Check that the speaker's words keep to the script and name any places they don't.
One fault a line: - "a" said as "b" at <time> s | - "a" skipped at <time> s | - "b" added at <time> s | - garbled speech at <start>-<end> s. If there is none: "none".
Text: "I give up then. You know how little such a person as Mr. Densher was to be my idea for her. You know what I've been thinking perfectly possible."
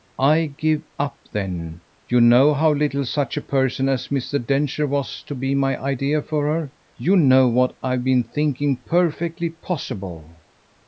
none